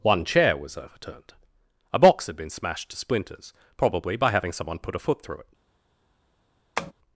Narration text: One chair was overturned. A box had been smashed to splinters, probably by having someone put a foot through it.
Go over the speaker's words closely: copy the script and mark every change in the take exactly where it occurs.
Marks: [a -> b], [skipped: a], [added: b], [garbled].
One chair was overturned. A box had been smashed to splinters, probably by having someone put a foot through it.